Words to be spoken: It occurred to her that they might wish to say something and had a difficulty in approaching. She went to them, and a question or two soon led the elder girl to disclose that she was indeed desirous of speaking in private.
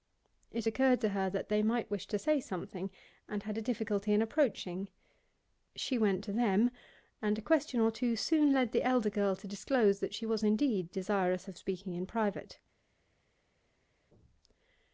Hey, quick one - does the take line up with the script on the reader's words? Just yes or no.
yes